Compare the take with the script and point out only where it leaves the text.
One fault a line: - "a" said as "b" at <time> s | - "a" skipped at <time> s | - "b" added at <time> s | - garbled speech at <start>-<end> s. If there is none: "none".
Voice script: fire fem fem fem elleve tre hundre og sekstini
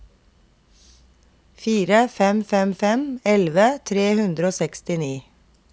none